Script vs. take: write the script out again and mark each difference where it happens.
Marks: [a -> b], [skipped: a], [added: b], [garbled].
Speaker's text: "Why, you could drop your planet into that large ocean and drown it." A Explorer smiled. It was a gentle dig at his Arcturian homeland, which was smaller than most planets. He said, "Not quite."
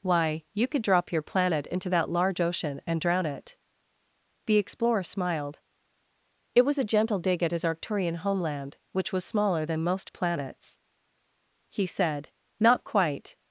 "Why, you could drop your planet into that large ocean and drown it." [A -> The] Explorer smiled. It was a gentle dig at his Arcturian homeland, which was smaller than most planets. He said, "Not quite."